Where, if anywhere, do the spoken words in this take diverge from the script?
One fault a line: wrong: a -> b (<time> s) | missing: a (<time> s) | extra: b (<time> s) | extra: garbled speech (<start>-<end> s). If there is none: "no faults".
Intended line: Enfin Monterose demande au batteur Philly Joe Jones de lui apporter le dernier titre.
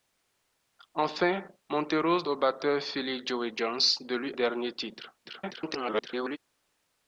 missing: demande (2.2 s)
missing: apporter le (4.3 s)
extra: garbled speech (5.2-6.4 s)